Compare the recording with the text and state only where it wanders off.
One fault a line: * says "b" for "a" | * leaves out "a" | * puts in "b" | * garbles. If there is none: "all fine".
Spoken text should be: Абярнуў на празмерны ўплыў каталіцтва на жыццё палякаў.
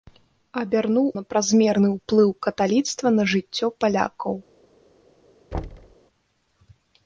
all fine